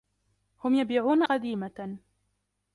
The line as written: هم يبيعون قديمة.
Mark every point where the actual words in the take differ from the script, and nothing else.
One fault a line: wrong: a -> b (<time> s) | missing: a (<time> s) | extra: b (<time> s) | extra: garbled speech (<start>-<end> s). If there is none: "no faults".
no faults